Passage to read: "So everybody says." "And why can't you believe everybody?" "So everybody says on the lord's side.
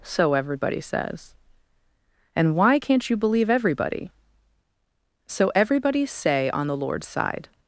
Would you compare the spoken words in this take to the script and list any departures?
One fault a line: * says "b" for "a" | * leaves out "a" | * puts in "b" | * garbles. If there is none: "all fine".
* says "say" for "says"